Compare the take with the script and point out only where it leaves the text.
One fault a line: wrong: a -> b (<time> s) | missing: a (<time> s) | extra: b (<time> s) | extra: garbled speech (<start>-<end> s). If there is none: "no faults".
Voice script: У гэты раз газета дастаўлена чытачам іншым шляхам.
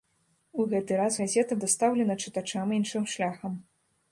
no faults